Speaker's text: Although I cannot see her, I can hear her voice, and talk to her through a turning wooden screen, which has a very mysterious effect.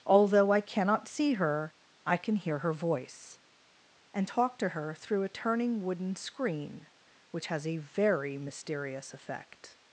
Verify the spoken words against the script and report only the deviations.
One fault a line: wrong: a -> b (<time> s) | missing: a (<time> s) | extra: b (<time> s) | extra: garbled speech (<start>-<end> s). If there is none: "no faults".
no faults